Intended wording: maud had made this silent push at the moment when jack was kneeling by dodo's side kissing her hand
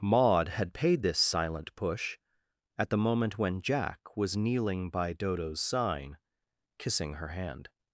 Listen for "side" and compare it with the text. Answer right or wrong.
wrong